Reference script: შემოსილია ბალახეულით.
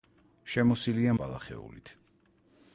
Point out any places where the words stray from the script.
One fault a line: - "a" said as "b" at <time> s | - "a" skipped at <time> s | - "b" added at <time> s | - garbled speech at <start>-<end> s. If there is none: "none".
none